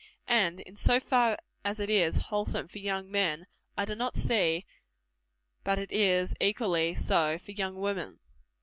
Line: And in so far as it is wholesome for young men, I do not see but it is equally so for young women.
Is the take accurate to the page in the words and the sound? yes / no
yes